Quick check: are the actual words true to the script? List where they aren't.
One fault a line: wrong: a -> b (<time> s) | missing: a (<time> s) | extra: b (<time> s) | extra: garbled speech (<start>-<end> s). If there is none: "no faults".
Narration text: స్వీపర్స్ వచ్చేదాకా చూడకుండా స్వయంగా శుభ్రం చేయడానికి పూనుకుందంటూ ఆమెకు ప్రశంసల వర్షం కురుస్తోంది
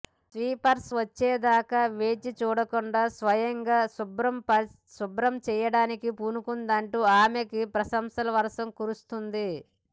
extra: వేచి (1.9 s)